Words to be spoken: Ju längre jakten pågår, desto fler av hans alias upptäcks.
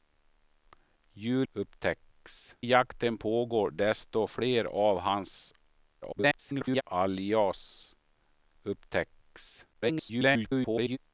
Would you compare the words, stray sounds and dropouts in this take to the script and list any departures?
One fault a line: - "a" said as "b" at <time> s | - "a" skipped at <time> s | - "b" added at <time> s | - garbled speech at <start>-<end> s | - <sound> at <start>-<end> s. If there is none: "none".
- "längre" said as "upptäcks" at 1.5 s
- garbled speech at 6.0-6.8 s
- garbled speech at 9.7-11.0 s